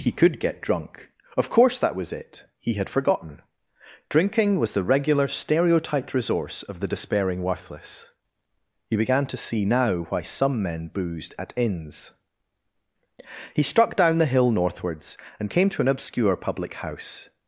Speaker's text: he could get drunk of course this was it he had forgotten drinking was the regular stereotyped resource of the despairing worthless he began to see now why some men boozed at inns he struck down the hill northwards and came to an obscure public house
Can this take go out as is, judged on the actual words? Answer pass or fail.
fail